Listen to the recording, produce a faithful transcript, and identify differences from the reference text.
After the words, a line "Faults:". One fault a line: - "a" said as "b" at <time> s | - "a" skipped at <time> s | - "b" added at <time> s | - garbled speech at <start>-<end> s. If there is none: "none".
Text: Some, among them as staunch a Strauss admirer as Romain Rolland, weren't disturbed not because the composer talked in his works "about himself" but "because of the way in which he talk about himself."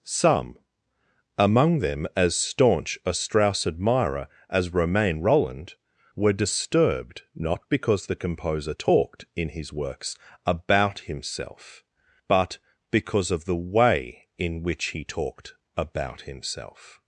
Some, among them as staunch a Strauss admirer as Romain Rolland, were disturbed not because the composer talked in his works "about himself" but "because of the way in which he talked about himself."
Faults:
- "weren't" said as "were" at 6.2 s
- "talk" said as "talked" at 15.0 s